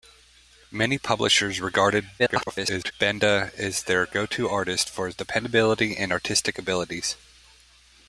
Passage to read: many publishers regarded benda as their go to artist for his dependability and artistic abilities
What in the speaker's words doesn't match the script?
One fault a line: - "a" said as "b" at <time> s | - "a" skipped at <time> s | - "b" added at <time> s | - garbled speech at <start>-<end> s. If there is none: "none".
- garbled speech at 2.2-2.9 s